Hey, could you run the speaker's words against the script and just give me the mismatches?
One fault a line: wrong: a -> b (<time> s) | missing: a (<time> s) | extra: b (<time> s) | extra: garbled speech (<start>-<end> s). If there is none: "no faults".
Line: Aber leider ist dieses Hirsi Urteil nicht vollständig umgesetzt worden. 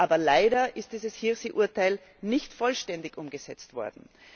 no faults